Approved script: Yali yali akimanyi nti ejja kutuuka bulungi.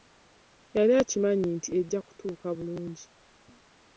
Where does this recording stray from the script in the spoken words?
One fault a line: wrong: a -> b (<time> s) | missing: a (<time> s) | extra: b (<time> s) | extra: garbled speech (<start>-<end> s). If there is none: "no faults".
missing: yali (0.9 s)